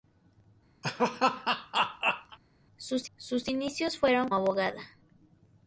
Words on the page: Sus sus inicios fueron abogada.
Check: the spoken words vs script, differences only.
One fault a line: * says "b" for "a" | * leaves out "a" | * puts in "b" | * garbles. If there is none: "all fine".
all fine